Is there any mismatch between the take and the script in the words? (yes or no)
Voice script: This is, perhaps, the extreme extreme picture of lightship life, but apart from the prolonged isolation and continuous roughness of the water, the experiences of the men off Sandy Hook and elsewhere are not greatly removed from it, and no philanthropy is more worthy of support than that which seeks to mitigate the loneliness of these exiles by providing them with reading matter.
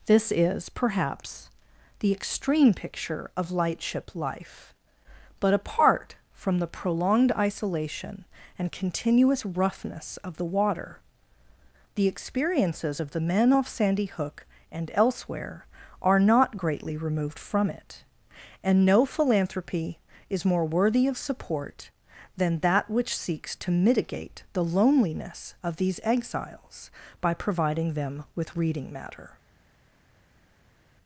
yes